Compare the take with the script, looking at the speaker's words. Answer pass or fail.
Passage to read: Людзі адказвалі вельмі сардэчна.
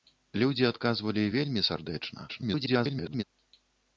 fail